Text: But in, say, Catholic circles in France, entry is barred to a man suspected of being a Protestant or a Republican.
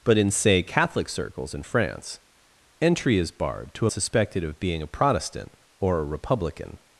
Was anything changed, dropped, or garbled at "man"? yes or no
yes